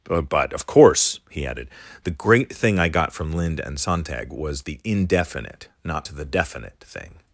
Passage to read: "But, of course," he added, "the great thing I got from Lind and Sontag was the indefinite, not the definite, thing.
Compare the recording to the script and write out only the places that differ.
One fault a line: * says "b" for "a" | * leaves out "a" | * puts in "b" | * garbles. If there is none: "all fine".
all fine